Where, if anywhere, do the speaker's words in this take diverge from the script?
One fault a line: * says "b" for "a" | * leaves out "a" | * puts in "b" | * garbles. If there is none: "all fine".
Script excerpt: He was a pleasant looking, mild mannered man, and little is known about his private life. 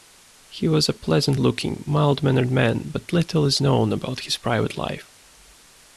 * says "but" for "and"